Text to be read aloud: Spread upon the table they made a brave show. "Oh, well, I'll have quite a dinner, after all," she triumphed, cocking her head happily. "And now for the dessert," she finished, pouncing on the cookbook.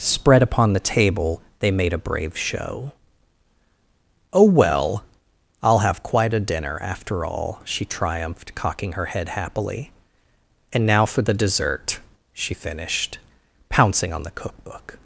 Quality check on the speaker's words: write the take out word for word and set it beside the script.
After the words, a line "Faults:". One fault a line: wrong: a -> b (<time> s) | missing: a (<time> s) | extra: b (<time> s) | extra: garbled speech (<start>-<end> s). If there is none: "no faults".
Spread upon the table they made a brave show. "Oh, well, I'll have quite a dinner, after all," she triumphed, cocking her head happily. "And now for the dessert," she finished, pouncing on the cookbook.
Faults:
no faults